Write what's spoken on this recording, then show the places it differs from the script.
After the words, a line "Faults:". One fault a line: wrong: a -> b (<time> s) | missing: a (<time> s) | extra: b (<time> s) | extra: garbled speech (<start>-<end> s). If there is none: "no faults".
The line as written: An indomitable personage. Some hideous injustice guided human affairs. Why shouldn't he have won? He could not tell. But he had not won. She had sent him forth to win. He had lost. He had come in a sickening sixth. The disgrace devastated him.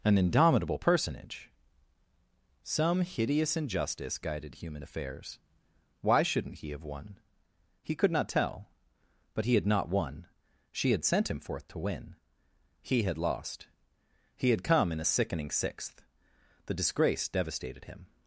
An indomitable personage. Some hideous injustice guided human affairs. Why shouldn't he have won? He could not tell. But he had not won. She had sent him forth to win. He had lost. He had come in a sickening sixth. The disgrace devastated him.
Faults:
no faults